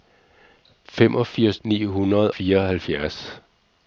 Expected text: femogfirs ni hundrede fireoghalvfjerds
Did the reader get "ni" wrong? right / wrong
right